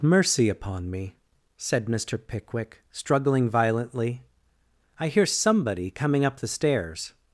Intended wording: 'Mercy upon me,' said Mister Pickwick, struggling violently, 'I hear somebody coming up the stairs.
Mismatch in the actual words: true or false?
false